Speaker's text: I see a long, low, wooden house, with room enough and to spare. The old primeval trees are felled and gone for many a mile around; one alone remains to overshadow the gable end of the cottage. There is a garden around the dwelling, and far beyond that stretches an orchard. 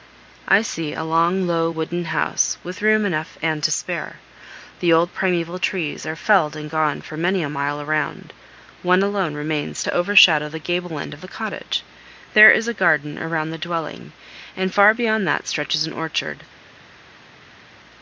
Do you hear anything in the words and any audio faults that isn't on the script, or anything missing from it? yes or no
no